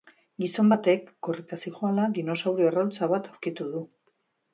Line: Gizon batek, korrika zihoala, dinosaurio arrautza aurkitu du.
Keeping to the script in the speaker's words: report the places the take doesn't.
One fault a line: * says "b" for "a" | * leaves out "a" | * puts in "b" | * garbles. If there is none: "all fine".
* puts in "bat"